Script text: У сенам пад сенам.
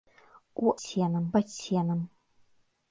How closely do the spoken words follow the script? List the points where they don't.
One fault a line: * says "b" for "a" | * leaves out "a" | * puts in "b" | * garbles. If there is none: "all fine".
all fine